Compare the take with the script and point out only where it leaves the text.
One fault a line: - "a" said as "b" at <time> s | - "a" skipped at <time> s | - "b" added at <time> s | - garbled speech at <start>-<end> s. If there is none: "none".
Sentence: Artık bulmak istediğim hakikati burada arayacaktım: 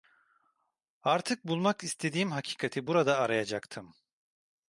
none